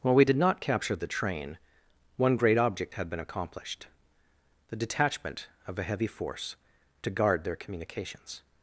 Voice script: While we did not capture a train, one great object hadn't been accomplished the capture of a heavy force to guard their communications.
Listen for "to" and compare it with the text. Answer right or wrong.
right